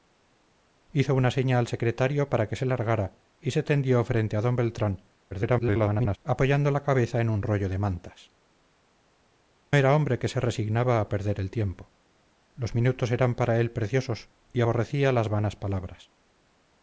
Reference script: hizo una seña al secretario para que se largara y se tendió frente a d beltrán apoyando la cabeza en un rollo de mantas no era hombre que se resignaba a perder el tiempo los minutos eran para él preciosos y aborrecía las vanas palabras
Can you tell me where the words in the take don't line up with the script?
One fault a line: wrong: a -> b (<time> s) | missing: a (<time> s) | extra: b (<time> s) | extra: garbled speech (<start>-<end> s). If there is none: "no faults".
extra: garbled speech (5.3-6.2 s)
missing: no (8.4 s)